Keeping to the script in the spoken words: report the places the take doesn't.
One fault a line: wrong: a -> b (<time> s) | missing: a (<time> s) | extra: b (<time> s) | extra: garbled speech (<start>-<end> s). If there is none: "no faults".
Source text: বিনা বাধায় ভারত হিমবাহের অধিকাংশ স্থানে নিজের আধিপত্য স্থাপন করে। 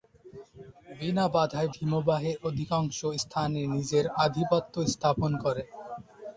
missing: ভারত (1.7 s)